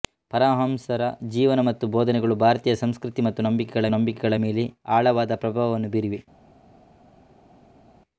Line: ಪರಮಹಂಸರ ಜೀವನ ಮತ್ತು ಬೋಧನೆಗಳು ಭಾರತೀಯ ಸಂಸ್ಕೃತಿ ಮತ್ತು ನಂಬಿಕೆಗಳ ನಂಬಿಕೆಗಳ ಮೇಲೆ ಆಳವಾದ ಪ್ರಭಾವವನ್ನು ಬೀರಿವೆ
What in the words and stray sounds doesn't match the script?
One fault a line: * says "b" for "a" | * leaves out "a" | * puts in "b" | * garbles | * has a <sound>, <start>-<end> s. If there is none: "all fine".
all fine